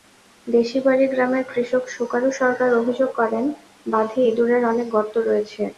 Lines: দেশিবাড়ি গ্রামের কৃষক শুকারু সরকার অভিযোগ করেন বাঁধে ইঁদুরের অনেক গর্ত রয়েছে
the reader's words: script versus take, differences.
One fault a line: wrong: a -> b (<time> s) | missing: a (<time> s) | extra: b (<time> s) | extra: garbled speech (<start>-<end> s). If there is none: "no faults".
no faults